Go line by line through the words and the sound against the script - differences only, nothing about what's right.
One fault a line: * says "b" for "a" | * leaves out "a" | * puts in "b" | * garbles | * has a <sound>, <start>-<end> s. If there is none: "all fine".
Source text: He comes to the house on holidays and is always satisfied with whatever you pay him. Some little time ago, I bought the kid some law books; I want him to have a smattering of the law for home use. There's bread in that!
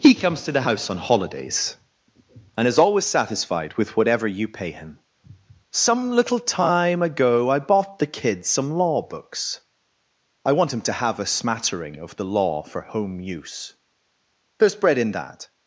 all fine